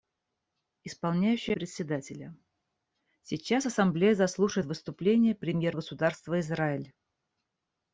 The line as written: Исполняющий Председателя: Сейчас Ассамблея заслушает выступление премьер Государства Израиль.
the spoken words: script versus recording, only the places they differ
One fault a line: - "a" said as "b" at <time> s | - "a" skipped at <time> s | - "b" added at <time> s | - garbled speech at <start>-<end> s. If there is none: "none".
none